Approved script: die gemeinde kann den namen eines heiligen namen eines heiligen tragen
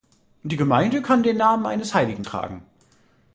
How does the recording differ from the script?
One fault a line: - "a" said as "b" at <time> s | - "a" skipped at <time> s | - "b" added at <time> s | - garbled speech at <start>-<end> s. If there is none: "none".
- "namen eines heiligen" skipped at 2.3 s